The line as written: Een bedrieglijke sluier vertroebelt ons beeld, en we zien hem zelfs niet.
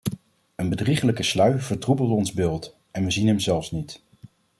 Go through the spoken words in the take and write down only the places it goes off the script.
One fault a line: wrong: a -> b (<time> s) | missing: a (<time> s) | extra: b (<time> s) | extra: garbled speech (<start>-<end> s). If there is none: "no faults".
no faults